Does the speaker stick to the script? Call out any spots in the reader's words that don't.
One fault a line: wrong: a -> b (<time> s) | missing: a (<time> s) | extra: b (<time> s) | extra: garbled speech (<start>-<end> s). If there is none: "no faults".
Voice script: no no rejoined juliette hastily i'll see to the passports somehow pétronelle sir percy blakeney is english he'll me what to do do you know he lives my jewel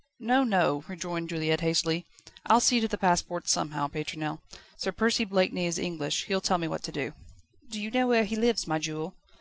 extra: tell (6.4 s)
extra: where (8.1 s)